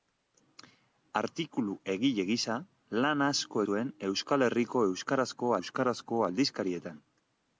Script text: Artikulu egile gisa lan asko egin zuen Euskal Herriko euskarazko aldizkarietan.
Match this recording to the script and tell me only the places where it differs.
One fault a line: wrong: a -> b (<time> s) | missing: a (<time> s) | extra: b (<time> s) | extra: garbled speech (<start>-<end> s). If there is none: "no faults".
missing: egin (3.6 s)
extra: euskarazko (5.6 s)